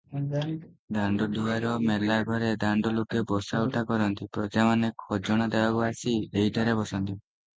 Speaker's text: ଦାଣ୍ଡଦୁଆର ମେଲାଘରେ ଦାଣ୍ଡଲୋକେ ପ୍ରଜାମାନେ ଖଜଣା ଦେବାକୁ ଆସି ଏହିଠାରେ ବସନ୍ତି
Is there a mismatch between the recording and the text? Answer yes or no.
yes